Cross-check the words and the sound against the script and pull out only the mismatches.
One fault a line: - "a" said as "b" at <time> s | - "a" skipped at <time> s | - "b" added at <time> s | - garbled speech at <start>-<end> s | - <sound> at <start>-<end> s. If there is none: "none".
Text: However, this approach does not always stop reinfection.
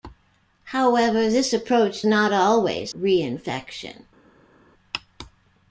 - "does" skipped at 2.1 s
- "stop" skipped at 2.9 s